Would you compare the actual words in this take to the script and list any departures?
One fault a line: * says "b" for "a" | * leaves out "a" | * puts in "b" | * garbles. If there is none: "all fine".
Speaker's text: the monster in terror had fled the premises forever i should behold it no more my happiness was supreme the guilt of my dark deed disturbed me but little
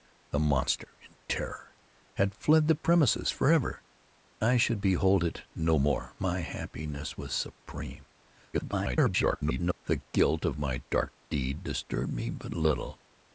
* garbles